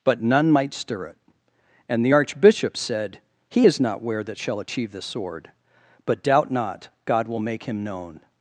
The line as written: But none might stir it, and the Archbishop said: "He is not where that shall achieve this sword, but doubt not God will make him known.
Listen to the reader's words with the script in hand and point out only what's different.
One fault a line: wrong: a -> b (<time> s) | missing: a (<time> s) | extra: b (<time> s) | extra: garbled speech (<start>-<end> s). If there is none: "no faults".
no faults